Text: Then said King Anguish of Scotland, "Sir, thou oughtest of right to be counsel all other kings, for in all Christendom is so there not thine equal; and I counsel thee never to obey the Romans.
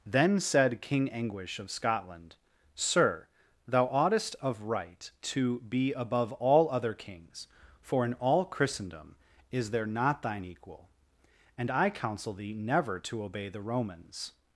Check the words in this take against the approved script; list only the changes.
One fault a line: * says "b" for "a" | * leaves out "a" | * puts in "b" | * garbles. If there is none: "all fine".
* says "above" for "counsel"
* leaves out "so"